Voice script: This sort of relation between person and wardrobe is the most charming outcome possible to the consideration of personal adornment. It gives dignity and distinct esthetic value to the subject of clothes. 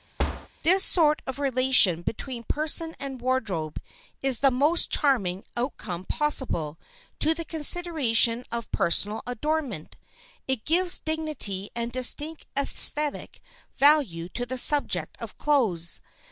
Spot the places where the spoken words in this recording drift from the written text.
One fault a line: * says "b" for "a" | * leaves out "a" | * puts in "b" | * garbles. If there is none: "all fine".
all fine